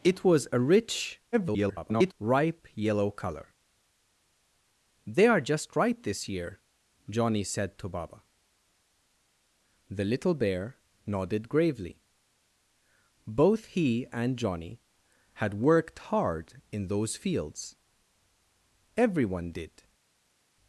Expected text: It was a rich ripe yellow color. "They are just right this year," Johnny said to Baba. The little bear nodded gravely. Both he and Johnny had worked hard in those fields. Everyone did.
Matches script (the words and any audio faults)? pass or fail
fail